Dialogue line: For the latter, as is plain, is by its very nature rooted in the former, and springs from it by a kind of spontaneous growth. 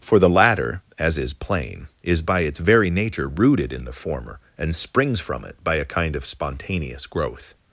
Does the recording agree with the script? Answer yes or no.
yes